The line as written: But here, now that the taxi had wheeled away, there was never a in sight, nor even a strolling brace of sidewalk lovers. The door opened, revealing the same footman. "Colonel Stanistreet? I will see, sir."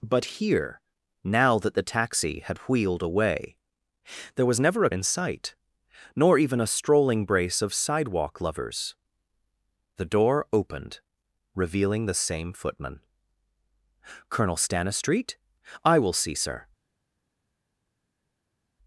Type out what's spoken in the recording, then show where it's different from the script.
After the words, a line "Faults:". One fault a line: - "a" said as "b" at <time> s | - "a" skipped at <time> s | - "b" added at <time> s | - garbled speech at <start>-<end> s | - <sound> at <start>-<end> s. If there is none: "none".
But here, now that the taxi had wheeled away, there was never a in sight, nor even a strolling brace of sidewalk lovers. The door opened, revealing the same footman. "Colonel Stanistreet? I will see, sir."
Faults:
none